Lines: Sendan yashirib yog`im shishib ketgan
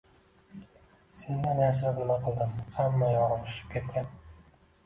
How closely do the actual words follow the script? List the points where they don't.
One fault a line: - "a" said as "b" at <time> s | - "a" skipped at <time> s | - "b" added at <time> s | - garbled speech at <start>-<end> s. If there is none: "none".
- "nima qildim hamma" added at 2.0 s